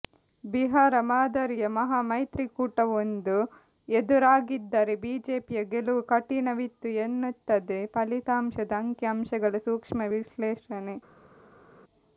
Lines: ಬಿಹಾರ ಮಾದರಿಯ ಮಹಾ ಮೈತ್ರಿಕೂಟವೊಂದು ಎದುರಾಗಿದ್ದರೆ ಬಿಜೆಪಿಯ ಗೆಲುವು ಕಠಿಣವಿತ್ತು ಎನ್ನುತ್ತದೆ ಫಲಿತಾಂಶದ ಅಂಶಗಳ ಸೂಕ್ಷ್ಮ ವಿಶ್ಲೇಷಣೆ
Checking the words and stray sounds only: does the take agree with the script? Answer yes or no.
no